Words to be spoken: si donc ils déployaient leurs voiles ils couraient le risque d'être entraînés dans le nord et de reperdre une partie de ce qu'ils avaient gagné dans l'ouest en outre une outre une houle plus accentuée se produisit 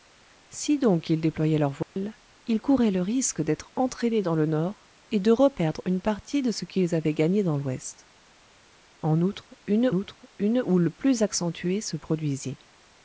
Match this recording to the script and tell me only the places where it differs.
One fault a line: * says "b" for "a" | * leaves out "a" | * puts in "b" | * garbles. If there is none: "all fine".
all fine